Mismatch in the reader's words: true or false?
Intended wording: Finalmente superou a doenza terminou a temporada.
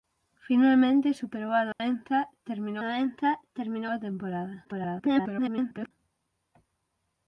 true